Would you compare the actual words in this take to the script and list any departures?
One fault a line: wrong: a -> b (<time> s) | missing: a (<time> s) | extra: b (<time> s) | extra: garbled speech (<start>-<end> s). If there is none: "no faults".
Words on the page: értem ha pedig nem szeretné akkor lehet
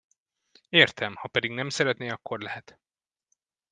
no faults